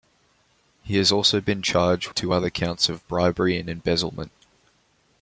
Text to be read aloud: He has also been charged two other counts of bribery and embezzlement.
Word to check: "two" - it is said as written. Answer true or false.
true